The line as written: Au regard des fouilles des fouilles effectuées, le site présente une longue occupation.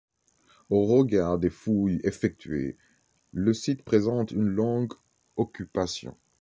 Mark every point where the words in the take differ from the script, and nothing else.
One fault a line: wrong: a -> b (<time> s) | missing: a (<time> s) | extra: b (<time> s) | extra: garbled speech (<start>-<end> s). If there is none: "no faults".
missing: des fouilles (2.0 s)